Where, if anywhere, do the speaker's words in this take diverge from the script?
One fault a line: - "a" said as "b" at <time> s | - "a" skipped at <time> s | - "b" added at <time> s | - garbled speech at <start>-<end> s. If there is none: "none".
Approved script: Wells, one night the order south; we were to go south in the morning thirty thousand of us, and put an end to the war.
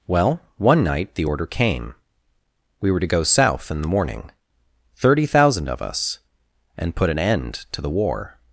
- "Wells" said as "Well" at 0.1 s
- "south" said as "came" at 1.4 s